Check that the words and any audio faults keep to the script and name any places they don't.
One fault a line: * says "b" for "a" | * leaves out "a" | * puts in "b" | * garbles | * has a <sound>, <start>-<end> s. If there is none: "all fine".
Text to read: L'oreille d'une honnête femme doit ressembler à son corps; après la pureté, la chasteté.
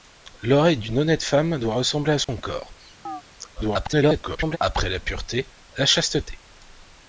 * has a dropout, 2.2-2.3 s
* has a chirp, 3.0-3.2 s
* garbles